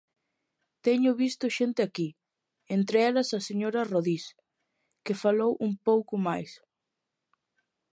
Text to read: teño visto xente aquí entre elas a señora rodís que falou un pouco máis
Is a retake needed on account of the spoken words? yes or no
no